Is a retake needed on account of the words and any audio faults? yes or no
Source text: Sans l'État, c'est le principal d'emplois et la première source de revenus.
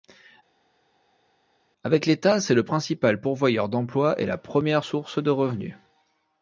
yes